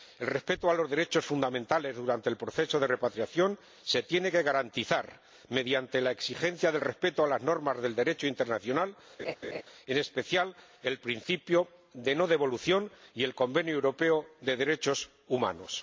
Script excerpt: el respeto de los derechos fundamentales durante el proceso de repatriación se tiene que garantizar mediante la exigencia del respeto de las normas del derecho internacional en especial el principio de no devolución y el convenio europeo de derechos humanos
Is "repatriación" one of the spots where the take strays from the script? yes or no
no